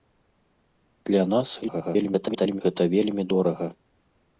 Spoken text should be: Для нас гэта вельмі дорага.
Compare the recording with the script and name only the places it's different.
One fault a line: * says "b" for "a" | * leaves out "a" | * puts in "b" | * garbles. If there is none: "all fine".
* garbles